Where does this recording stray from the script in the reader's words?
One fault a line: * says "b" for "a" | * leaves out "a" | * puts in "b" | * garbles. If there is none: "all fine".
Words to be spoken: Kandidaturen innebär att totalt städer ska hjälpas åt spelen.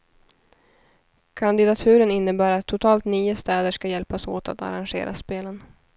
* puts in "nio"
* puts in "att arrangera"